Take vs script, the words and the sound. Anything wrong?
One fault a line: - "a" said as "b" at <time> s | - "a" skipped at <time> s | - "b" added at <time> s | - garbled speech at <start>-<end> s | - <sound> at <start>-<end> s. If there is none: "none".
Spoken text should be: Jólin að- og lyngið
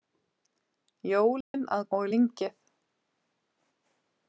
- dropout at 1.4-1.5 s